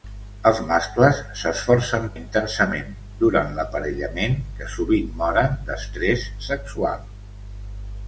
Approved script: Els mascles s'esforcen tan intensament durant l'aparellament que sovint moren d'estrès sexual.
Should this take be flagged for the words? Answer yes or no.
yes